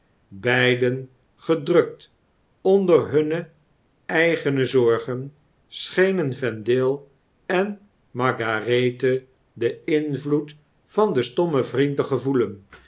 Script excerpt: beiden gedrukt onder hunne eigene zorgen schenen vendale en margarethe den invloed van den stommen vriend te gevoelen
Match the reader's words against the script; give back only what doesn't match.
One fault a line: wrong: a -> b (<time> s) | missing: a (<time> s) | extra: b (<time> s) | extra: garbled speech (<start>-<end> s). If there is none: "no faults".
no faults